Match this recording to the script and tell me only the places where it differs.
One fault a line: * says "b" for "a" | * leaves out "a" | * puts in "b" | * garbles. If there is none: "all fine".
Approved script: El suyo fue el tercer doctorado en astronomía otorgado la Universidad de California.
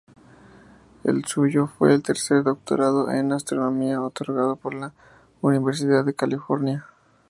* puts in "por"